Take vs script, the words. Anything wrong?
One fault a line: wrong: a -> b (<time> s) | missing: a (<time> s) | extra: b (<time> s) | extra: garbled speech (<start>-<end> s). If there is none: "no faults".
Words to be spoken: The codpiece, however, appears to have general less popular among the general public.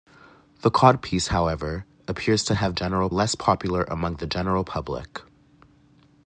no faults